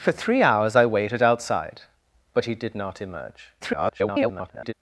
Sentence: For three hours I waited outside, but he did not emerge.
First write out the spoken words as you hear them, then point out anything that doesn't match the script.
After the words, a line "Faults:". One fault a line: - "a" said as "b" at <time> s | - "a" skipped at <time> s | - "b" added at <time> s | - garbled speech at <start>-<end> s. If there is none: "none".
For three hours I waited outside, but he did not emerge. [garbled]
Faults:
- garbled speech at 3.6-4.7 s